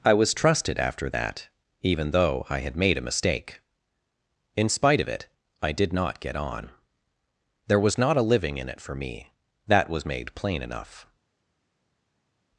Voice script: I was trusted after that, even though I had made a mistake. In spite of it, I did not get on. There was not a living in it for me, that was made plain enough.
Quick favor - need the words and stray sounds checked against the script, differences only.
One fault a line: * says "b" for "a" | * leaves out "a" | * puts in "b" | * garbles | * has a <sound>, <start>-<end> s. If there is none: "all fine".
all fine